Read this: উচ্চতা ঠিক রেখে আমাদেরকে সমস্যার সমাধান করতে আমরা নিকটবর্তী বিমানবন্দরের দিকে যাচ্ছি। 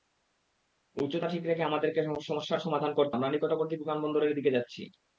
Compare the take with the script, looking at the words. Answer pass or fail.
pass